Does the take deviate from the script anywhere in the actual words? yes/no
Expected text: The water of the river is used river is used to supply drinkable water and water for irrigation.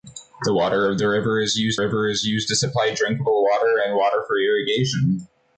no